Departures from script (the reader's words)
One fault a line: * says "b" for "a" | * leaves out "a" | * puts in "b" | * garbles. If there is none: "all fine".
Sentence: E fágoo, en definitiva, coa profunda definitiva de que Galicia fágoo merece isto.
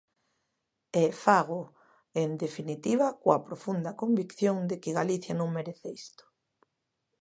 * says "convicción" for "definitiva"
* says "non" for "fágoo"